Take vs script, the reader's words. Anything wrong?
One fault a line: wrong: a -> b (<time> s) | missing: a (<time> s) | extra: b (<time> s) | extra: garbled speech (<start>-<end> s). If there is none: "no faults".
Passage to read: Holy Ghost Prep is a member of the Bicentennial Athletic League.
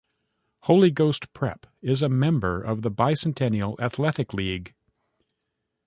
no faults